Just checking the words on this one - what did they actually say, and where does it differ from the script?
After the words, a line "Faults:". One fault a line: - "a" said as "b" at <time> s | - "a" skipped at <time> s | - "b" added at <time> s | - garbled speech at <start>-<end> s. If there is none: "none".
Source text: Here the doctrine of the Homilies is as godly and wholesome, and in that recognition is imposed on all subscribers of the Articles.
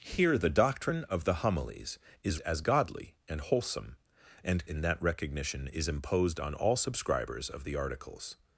Here the doctrine of the Homilies is as godly and wholesome, and in that recognition is imposed on all subscribers of the Articles.
Faults:
none